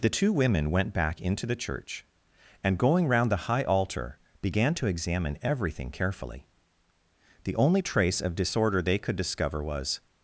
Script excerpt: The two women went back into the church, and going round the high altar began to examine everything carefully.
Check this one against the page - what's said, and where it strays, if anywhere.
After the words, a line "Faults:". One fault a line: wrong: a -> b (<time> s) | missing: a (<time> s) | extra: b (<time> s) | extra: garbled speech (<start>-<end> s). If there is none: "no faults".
The two women went back into the church, and going round the high altar began to examine everything carefully. The only trace of disorder they could discover was
Faults:
extra: The only trace of disorder they could discover was (7.4 s)